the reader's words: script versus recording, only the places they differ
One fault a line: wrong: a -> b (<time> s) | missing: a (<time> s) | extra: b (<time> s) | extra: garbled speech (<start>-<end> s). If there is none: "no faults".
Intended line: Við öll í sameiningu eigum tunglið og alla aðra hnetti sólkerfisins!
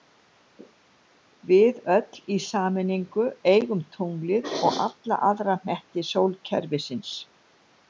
no faults